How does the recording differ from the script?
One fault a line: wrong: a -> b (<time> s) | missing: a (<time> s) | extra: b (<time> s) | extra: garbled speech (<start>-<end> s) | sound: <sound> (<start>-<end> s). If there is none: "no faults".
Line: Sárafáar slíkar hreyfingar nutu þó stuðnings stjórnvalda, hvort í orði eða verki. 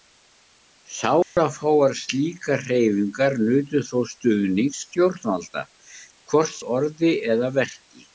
sound: dropout (1.2-1.4 s)